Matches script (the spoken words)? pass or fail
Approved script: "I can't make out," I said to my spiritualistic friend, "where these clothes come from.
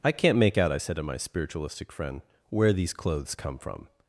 pass